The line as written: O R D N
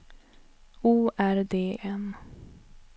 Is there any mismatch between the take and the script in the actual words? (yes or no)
no